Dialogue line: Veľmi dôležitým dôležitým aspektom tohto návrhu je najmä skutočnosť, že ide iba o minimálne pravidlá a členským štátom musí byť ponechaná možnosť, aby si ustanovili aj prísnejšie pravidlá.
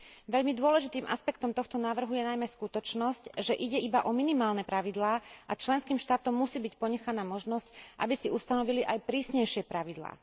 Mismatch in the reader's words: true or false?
true